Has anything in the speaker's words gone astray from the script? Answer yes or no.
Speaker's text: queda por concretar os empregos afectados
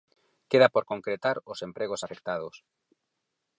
no